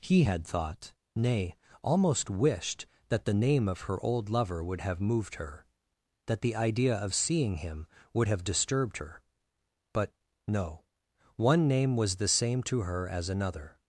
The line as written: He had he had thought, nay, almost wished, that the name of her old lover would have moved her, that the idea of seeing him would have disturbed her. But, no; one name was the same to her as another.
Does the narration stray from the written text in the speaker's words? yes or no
yes